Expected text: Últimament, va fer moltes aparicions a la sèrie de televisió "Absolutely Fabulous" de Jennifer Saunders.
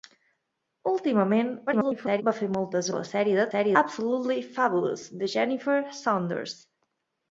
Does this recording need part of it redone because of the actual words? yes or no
yes